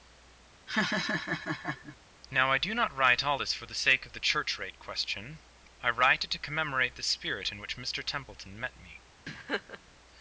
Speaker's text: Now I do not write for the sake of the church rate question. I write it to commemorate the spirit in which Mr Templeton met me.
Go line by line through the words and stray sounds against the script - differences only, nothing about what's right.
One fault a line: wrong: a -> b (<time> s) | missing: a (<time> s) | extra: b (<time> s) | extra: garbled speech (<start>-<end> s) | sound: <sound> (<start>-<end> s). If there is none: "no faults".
sound: laugh (0.7-2.0 s)
extra: all this (3.2 s)
sound: laugh (9.3-9.8 s)